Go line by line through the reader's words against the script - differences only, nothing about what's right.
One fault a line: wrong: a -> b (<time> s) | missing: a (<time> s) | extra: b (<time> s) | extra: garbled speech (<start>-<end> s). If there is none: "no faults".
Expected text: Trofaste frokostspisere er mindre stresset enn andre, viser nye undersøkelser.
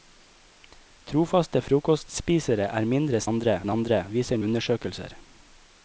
wrong: stresset -> andre (3.3 s)
missing: nye (4.4 s)